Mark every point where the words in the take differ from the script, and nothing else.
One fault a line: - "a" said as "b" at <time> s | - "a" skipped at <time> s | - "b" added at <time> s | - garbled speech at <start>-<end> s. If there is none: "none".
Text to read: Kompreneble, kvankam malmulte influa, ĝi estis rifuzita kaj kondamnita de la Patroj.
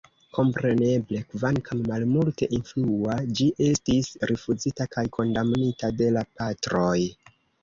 none